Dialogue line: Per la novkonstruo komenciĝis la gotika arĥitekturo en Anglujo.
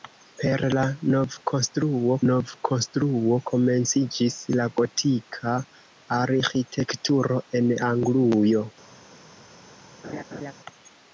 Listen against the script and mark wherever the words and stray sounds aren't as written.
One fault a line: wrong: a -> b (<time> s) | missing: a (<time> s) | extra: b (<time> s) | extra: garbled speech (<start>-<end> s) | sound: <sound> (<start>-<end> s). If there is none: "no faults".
extra: novkonstruo (2.3 s)
sound: laugh (10.0-10.5 s)